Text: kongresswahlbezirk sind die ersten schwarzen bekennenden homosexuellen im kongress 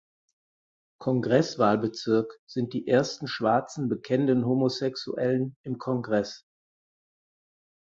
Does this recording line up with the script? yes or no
yes